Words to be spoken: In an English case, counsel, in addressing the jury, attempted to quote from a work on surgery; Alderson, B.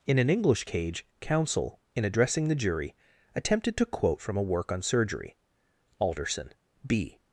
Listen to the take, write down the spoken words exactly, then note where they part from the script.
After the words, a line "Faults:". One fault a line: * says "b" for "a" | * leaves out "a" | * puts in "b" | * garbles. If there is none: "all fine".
In an English cage, counsel, in addressing the jury, attempted to quote from a work on surgery; Alderson, B.
Faults:
* says "cage" for "case"